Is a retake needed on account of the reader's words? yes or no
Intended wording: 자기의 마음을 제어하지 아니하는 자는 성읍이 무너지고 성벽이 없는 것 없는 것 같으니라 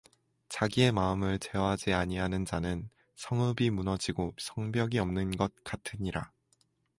yes